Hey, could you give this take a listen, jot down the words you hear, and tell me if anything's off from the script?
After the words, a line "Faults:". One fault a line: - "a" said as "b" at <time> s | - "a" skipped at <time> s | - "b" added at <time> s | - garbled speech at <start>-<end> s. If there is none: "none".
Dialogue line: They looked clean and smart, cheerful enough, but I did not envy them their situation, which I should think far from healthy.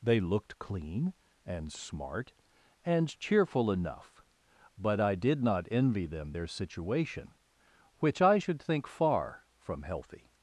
They looked clean and smart, and cheerful enough, but I did not envy them their situation, which I should think far from healthy.
Faults:
- "and" added at 2.8 s